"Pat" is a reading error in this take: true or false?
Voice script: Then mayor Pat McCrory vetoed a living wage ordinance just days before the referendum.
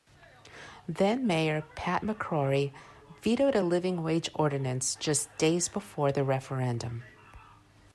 false